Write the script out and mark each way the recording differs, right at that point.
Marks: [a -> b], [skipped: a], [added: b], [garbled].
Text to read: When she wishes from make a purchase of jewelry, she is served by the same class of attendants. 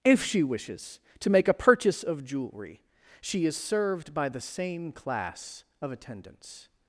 [When -> If] she wishes [from -> to] make a purchase of jewelry, she is served by the same class of attendants.